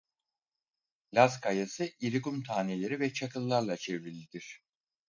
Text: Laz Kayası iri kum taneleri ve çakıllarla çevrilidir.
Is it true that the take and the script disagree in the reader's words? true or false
false